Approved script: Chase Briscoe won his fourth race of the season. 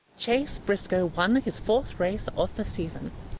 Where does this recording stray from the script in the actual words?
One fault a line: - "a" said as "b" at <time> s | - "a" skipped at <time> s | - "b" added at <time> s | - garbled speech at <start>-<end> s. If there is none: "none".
none